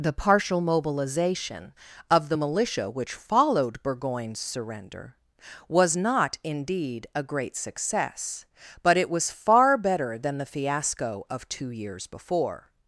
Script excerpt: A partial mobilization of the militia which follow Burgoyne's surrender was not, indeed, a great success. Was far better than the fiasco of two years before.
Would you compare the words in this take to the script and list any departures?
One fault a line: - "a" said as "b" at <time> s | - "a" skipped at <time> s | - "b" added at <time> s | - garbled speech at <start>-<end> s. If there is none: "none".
- "A" said as "The" at 0.0 s
- "follow" said as "followed" at 3.1 s
- "But it" added at 8.8 s